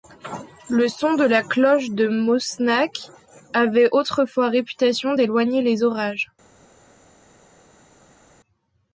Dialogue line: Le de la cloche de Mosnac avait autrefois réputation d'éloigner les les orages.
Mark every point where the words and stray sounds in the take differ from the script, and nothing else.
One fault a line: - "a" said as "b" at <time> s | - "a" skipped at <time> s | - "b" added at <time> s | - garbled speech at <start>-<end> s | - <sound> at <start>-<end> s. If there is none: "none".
- "son" added at 0.9 s
- "les" skipped at 5.8 s